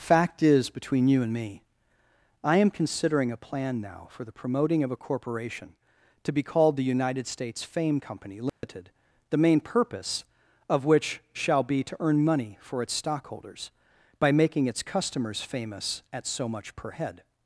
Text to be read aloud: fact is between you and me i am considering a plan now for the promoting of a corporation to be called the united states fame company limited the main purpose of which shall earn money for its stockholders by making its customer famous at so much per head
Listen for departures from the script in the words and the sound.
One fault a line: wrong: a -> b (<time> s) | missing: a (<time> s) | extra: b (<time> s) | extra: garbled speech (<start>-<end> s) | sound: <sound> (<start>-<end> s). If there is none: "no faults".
sound: dropout (8.5-8.6 s)
extra: be to (11.6 s)
wrong: customer -> customers (14.8 s)